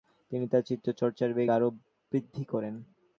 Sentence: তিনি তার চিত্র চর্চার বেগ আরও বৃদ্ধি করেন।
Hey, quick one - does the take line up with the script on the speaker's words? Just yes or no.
yes